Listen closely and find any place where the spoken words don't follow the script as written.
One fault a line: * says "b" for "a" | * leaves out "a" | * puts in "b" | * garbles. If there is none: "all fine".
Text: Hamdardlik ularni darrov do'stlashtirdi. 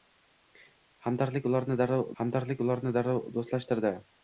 * puts in "hamdardlik ularni darrov"